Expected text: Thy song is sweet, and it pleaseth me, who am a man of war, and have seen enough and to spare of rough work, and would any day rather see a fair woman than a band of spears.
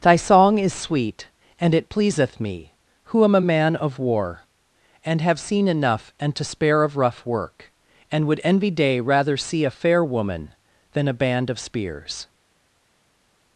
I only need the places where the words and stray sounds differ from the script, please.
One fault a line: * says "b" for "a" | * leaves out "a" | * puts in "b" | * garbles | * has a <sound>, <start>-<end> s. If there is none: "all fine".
* says "envy" for "any"